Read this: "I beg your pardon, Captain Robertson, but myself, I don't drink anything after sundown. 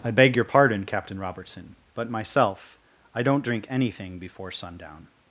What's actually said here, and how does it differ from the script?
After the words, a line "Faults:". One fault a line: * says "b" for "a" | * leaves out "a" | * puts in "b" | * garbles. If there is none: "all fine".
"I beg your pardon, Captain Robertson, but myself, I don't drink anything before sundown.
Faults:
* says "before" for "after"